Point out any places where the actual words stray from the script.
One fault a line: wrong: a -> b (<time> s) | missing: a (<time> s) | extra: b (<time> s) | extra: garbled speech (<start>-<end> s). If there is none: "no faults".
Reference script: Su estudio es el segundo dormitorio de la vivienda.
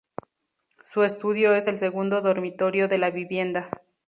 no faults